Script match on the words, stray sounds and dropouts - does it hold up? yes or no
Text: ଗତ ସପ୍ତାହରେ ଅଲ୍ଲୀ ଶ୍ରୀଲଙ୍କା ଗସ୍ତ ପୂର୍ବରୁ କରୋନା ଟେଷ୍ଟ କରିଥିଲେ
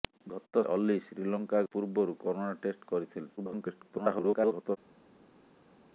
no